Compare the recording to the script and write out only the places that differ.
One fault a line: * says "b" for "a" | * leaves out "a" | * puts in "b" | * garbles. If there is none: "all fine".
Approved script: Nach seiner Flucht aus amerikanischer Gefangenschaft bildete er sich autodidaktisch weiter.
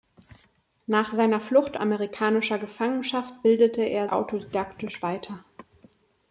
* leaves out "aus"
* leaves out "sich"